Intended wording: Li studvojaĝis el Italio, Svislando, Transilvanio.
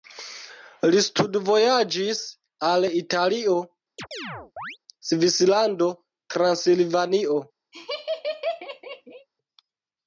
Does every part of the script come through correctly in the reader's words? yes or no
no